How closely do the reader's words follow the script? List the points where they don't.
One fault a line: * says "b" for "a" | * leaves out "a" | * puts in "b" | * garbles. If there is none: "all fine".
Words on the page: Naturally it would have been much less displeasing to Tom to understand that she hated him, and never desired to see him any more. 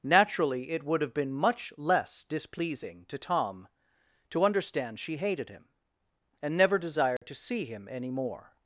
* leaves out "that"